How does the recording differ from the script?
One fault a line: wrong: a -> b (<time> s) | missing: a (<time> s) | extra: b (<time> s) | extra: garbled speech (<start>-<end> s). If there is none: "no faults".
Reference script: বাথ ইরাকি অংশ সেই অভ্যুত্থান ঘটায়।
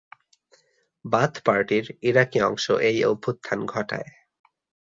extra: পার্টির (1.4 s)
wrong: সেই -> এই (2.8 s)